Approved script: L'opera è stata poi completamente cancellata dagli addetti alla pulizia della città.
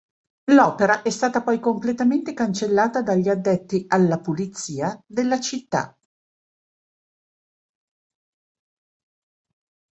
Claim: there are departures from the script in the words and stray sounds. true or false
false